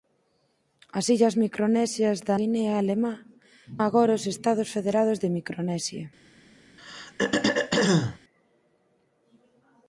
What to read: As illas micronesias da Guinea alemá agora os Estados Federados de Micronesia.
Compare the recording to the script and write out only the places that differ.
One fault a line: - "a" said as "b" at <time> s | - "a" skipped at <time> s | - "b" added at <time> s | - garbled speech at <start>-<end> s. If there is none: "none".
none